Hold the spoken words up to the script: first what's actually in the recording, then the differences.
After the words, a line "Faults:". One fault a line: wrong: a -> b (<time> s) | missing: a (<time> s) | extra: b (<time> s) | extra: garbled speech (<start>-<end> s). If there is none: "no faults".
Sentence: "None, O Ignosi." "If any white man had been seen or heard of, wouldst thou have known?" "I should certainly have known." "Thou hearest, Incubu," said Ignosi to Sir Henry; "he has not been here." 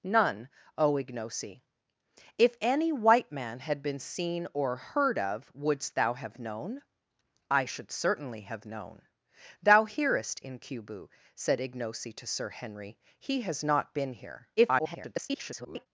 "None, O Ignosi." "If any white man had been seen or heard of, wouldst thou have known?" "I should certainly have known." "Thou hearest, Incubu," said Ignosi to Sir Henry; "he has not been here." [garbled]
Faults:
extra: garbled speech (14.6-15.9 s)